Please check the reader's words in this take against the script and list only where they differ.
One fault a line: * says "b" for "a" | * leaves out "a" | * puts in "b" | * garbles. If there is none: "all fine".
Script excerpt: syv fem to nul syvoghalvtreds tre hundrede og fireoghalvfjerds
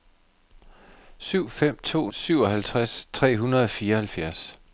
* leaves out "nul"